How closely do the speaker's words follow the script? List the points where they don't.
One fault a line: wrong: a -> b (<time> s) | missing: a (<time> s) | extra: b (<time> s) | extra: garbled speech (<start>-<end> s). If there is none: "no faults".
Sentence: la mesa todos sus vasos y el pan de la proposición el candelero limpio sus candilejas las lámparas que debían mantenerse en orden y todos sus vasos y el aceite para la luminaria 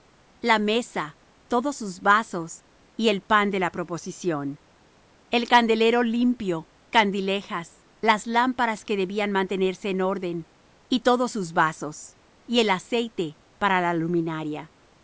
missing: sus (6.7 s)